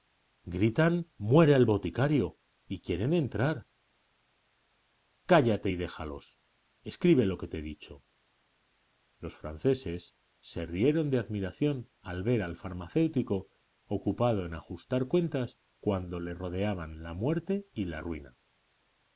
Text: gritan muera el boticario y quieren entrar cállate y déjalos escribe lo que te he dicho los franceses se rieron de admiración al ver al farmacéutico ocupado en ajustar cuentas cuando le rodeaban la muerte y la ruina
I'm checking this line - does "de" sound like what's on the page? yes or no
yes